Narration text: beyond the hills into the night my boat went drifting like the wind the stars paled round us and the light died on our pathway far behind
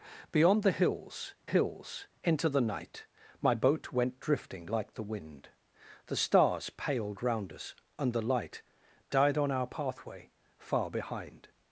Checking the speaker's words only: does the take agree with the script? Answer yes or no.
no